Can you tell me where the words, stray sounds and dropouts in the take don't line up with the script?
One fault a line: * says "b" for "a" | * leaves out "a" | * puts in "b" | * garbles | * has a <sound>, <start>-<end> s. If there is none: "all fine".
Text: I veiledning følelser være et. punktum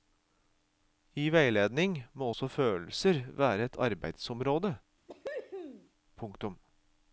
* puts in "må også"
* puts in "arbeidsområde"
* has a cough, 5.1-5.9 s